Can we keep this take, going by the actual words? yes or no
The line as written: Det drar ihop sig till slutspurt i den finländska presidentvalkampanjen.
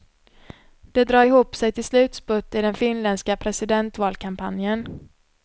yes